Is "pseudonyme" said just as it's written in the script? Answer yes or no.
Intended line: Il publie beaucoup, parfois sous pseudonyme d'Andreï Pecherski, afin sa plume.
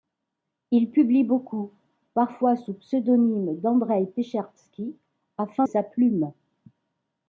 yes